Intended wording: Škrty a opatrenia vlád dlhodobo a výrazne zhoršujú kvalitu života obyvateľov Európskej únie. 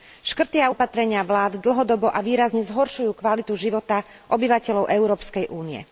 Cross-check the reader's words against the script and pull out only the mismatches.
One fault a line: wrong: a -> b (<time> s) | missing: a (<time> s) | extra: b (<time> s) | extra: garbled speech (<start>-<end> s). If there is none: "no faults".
no faults